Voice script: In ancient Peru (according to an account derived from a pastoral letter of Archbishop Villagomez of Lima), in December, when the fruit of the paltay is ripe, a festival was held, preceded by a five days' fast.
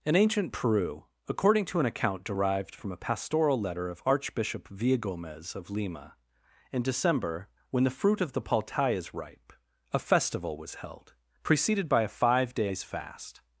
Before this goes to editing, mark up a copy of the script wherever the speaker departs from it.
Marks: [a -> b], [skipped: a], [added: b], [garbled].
In ancient Peru (according to an account derived from a pastoral letter of Archbishop Villagomez of Lima), in December, when the fruit of the paltay is ripe, a festival was held, preceded by a five days' fast.